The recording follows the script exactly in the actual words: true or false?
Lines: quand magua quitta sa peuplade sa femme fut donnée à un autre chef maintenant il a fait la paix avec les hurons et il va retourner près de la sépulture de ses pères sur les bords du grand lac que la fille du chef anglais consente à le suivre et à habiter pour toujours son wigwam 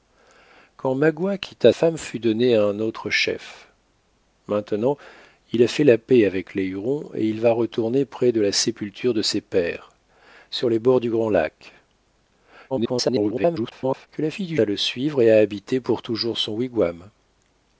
false